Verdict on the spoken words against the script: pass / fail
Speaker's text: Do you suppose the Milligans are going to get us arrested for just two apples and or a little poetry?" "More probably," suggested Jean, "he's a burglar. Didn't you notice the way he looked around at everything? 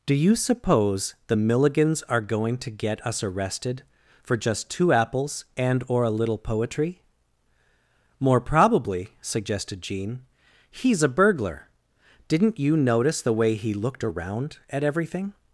pass